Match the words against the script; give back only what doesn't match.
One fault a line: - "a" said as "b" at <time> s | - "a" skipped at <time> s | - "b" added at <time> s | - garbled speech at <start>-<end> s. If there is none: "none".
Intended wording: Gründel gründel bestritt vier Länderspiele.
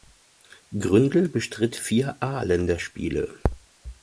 - "gründel" skipped at 1.3 s
- "A" added at 2.2 s